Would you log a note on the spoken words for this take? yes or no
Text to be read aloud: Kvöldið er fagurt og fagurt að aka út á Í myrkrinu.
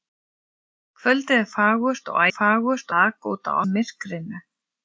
no